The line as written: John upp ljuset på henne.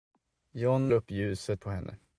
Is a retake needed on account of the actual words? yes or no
no